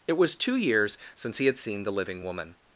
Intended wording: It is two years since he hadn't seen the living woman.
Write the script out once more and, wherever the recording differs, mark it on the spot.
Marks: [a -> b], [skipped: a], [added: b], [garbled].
It [is -> was] two years since he [hadn't -> had] seen the living woman.